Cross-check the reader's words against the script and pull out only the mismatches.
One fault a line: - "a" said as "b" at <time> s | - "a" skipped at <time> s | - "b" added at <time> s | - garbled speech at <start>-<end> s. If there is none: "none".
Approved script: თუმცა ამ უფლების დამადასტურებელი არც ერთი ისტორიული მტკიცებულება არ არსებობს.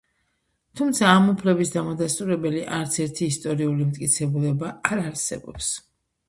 none